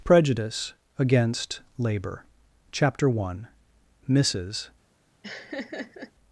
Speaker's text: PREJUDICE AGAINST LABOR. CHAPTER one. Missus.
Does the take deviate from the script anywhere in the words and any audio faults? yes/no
yes